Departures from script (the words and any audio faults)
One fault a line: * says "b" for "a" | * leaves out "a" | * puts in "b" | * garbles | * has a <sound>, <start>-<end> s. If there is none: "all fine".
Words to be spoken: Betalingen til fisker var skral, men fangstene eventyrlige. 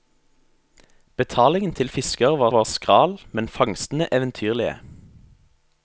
* puts in "var"